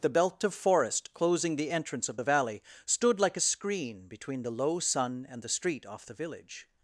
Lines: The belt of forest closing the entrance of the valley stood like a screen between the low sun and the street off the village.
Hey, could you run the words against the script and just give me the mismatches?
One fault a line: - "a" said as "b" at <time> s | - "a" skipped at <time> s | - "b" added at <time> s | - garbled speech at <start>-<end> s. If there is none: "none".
none